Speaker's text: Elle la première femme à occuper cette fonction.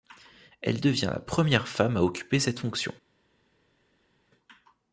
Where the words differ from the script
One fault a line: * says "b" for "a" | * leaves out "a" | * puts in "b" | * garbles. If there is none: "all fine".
* puts in "devient"